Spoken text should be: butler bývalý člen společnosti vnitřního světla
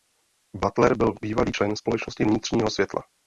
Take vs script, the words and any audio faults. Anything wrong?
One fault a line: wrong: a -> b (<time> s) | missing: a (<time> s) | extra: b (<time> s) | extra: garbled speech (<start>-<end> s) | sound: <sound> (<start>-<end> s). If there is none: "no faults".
extra: byl (1.0 s)